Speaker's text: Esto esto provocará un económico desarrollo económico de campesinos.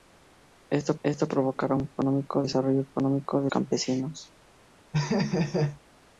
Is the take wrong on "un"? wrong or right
right